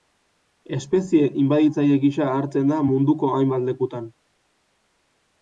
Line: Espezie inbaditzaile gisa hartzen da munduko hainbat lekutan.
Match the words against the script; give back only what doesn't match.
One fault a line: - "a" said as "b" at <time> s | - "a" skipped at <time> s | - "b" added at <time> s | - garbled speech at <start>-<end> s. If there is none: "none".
none